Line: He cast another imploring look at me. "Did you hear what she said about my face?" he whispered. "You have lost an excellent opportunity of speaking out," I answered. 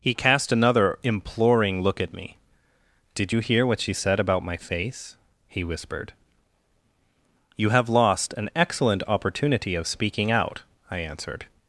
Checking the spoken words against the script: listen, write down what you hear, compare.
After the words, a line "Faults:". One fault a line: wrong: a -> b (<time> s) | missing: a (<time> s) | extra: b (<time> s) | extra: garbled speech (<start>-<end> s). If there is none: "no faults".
He cast another imploring look at me. "Did you hear what she said about my face?" he whispered. "You have lost an excellent opportunity of speaking out," I answered.
Faults:
no faults